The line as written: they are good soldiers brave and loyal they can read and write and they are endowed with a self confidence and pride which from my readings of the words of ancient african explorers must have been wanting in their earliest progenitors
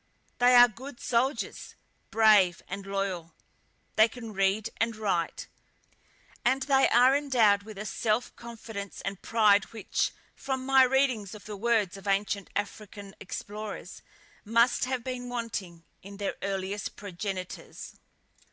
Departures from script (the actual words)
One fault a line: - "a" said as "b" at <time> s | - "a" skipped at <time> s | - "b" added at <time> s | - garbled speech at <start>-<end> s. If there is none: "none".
none